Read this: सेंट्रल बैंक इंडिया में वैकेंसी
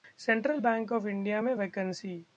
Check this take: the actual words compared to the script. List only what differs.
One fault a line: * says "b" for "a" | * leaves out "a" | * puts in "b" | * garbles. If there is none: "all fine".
* puts in "ऑफ"